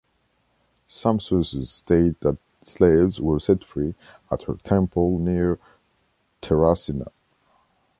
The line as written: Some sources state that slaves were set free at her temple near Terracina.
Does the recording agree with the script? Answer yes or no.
yes